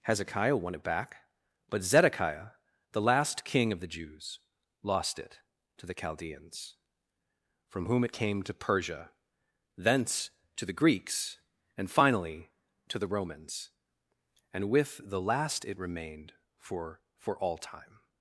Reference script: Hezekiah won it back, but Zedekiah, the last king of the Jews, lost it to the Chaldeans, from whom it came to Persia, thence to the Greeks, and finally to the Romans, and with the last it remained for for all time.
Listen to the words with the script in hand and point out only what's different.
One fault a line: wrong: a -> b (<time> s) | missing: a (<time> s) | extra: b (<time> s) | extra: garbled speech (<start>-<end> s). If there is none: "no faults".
no faults